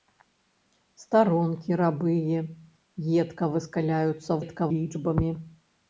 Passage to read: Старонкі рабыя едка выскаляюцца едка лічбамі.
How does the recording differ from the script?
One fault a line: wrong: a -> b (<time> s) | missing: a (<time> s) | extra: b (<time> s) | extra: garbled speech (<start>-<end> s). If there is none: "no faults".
no faults